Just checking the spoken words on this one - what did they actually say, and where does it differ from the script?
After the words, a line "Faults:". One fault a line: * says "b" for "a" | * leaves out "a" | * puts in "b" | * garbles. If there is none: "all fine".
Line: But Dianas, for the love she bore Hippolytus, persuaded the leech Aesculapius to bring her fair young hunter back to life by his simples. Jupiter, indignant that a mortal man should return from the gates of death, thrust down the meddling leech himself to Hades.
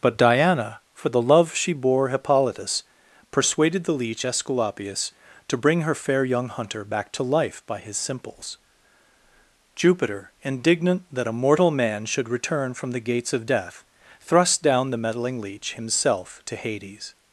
But Diana, for the love she bore Hippolytus, persuaded the leech Aesculapius to bring her fair young hunter back to life by his simples. Jupiter, indignant that a mortal man should return from the gates of death, thrust down the meddling leech himself to Hades.
Faults:
* says "Diana" for "Dianas"